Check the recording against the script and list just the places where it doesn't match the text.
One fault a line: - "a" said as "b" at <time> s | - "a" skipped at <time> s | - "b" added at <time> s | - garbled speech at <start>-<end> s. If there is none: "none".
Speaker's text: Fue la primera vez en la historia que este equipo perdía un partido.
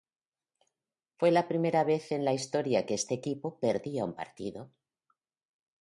none